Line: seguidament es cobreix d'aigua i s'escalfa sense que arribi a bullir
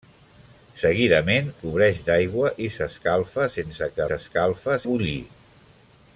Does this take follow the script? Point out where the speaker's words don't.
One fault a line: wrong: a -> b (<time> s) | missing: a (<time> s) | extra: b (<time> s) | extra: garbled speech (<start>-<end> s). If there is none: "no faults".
missing: es (1.5 s)
wrong: arribi -> s'escalfa (4.1 s)